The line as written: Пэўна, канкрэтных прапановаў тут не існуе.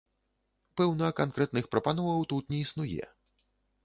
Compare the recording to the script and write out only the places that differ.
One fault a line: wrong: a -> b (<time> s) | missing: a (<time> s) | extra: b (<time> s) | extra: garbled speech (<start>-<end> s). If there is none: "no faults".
no faults